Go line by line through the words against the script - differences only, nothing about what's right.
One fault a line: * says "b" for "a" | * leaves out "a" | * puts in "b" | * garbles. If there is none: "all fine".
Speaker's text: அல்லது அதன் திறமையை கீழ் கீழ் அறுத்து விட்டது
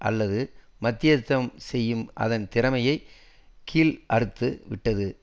* puts in "மத்தியஸ்தம் செய்யும்"
* leaves out "கீழ்"